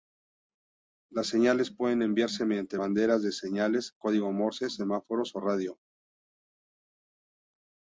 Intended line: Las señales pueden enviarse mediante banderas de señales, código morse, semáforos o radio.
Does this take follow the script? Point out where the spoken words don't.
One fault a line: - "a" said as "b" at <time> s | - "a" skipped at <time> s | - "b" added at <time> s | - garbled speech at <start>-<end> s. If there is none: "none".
none